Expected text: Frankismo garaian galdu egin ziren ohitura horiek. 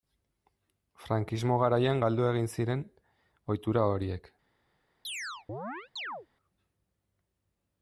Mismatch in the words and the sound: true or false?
true